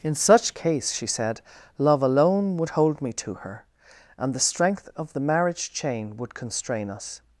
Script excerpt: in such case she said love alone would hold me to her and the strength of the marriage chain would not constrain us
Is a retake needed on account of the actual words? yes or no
yes